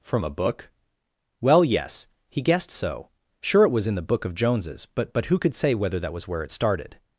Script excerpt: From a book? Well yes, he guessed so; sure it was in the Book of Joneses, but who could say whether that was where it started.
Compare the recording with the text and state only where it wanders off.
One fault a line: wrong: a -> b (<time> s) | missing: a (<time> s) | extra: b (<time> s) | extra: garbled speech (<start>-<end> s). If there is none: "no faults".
extra: but (5.1 s)